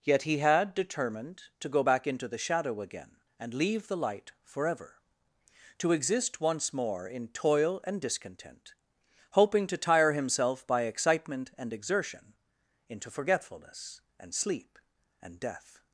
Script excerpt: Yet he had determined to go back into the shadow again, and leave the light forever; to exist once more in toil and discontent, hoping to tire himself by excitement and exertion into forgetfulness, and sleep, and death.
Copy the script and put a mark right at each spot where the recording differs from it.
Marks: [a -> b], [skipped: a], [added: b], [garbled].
Yet he had determined to go back into the shadow again, and leave the light forever; to exist once more in toil and discontent, hoping to tire himself by excitement and exertion into forgetfulness, and sleep, and death.